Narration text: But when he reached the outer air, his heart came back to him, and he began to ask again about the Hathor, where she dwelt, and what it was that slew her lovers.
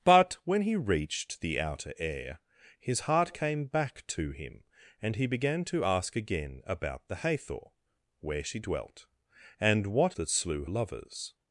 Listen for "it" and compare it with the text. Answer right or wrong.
wrong